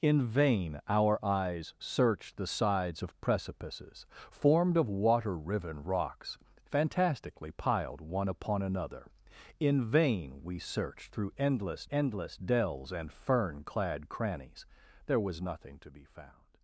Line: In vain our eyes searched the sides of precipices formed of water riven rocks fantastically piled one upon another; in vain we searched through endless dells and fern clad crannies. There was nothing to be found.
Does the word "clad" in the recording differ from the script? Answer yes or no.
no